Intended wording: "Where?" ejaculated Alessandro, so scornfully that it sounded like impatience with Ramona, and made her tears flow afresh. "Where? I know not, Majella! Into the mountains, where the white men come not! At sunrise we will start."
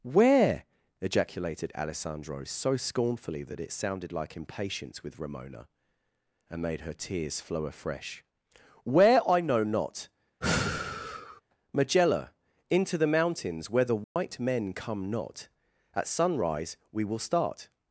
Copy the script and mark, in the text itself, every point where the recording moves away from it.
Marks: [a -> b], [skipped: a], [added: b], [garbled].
"Where?" ejaculated Alessandro, so scornfully that it sounded like impatience with Ramona, and made her tears flow afresh. "Where? I know not, Majella! Into the mountains, where the white men come not! At sunrise we will start."